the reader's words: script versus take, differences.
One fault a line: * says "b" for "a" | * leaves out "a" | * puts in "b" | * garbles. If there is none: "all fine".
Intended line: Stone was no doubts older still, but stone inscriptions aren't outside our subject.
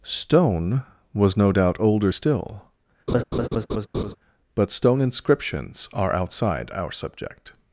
* says "doubt" for "doubts"
* says "are" for "aren't"